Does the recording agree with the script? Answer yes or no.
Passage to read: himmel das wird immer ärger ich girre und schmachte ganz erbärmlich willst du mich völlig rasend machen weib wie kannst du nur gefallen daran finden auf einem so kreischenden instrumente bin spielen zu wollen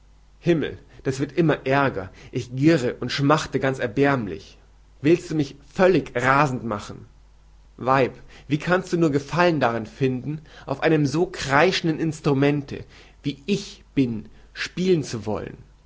no